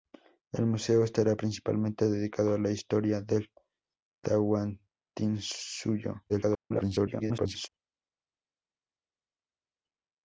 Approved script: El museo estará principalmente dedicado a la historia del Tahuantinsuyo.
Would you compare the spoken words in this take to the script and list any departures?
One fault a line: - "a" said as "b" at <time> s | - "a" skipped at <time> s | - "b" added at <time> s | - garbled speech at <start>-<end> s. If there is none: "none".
- garbled speech at 6.3-7.7 s